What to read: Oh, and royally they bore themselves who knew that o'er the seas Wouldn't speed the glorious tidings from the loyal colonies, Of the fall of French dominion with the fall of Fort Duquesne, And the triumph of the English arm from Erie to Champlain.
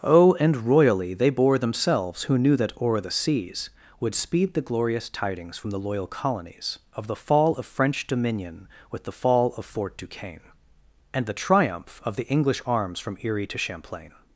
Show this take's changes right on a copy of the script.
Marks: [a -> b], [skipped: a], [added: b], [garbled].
Oh, and royally they bore themselves who knew that o'er the seas [Wouldn't -> Would] speed the glorious tidings from the loyal colonies, Of the fall of French dominion with the fall of Fort Duquesne, And the triumph of the English [arm -> arms] from Erie to Champlain.